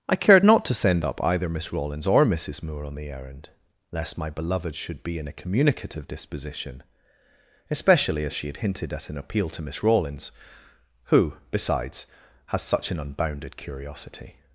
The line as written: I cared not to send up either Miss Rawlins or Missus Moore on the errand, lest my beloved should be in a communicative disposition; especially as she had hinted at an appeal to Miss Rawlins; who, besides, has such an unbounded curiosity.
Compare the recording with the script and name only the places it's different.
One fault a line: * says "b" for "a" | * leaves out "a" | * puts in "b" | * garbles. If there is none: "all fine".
all fine